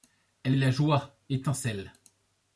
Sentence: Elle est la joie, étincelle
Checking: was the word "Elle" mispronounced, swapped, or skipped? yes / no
no